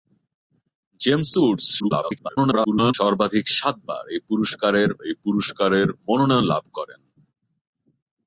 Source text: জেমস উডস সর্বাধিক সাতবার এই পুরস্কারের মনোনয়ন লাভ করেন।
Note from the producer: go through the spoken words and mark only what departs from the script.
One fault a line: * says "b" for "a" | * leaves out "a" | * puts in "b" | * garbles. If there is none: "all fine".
* garbles
* puts in "এই পুরস্কারের"